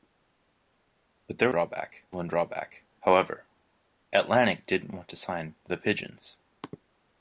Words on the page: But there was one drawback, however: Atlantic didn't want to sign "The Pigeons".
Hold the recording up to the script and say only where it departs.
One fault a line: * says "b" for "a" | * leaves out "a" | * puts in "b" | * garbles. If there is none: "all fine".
* says "drawback" for "was"